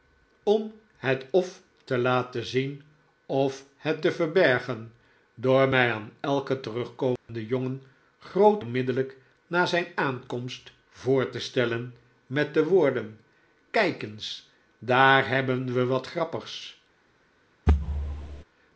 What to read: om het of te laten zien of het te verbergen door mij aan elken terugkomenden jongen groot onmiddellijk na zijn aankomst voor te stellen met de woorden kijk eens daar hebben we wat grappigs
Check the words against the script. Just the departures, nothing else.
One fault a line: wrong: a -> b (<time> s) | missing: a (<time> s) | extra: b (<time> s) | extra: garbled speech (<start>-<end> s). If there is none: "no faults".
no faults